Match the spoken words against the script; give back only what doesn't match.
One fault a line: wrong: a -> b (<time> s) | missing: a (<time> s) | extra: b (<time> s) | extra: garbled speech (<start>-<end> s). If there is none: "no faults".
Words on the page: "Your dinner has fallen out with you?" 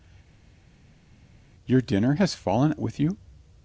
missing: out (2.7 s)